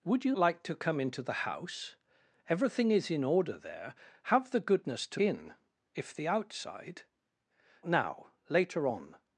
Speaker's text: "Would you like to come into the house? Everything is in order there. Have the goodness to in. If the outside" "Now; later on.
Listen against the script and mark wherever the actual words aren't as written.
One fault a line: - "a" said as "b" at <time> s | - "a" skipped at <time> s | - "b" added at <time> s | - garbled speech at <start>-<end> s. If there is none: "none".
none